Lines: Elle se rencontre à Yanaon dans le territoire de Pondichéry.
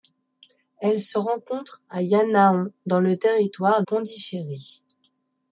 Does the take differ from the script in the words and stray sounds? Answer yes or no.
yes